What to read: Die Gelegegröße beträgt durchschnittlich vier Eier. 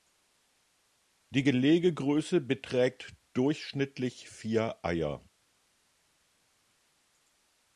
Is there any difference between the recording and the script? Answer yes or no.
no